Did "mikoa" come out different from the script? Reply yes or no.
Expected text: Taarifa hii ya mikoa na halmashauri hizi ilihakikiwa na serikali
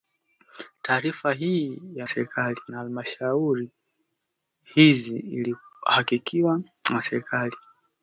yes